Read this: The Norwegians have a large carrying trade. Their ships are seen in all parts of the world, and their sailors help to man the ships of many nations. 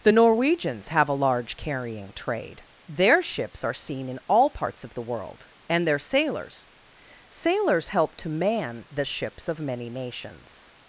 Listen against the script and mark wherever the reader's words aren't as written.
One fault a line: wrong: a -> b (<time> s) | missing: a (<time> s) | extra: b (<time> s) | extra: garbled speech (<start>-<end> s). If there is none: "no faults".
extra: sailors (7.3 s)